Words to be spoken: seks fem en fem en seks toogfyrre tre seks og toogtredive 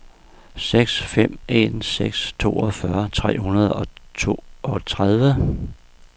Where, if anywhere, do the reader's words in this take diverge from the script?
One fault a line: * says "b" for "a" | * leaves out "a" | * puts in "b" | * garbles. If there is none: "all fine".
* leaves out "fem en"
* says "hundrede" for "seks"